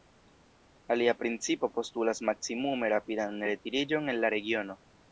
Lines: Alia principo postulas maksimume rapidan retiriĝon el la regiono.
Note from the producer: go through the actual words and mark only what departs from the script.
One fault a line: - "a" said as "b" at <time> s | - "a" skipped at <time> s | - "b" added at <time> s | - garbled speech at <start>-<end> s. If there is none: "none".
none